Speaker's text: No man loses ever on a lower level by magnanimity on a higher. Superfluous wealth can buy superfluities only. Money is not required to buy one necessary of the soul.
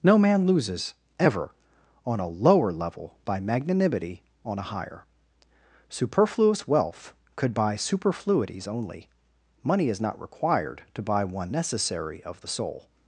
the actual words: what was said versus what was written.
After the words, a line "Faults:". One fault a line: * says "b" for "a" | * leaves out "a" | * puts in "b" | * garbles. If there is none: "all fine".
No man loses ever on a lower level by magnanimity on a higher. Superfluous wealth could buy superfluities only. Money is not required to buy one necessary of the soul.
Faults:
* says "could" for "can"